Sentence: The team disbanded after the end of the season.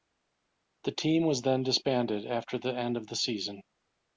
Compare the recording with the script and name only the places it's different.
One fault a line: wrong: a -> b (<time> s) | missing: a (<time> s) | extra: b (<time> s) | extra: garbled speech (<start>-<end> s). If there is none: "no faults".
extra: was then (1.2 s)